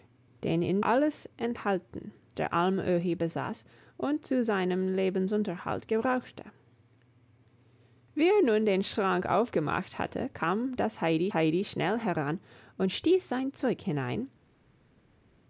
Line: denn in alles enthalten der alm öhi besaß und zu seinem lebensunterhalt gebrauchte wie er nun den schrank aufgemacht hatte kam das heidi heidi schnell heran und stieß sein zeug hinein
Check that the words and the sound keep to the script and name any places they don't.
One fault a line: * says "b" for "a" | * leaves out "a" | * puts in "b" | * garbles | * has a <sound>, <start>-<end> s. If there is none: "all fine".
all fine